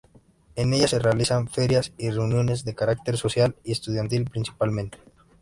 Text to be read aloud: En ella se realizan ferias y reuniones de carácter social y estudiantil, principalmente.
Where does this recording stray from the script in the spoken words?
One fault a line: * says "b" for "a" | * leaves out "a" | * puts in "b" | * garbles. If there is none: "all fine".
all fine